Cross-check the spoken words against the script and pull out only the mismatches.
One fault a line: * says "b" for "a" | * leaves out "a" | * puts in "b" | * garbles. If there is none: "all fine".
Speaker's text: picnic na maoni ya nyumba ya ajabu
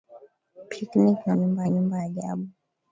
* says "nyumba" for "maoni"
* leaves out "ya"